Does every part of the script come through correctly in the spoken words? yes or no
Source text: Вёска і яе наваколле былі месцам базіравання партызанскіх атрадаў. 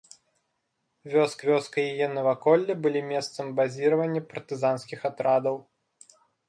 no